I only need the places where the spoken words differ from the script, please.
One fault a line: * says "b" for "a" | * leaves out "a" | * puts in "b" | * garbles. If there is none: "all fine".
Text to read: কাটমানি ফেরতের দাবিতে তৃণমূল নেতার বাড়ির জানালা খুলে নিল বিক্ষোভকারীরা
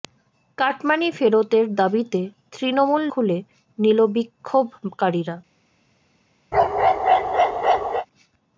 * leaves out "নেতার বাড়ির জানালা"